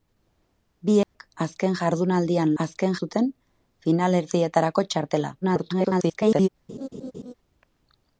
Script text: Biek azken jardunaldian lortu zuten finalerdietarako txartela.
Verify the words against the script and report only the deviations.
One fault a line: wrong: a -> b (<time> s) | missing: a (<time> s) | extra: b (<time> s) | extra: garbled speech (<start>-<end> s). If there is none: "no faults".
wrong: lortu -> azken (2.6 s)
extra: garbled speech (5.4-6.5 s)